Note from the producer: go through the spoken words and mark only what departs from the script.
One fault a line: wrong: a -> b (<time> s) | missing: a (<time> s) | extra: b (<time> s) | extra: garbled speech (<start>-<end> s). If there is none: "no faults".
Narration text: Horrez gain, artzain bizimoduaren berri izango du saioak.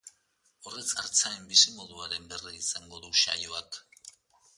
missing: gain (0.8 s)